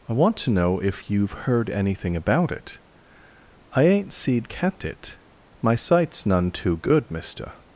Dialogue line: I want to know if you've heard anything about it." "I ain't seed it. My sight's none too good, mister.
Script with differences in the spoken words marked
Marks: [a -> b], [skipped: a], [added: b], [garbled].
I want to know if you've heard anything about it." "I ain't seed [added: kept] it. My sight's none too good, mister.